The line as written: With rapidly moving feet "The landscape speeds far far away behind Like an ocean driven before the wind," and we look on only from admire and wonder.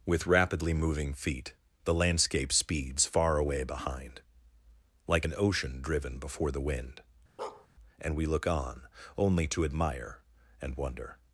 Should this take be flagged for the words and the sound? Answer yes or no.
yes